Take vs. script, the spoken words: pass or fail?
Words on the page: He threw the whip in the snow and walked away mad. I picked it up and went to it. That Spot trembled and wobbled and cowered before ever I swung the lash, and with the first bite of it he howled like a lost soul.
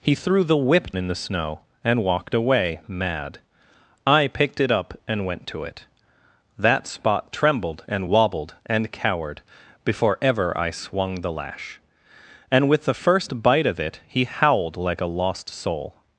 pass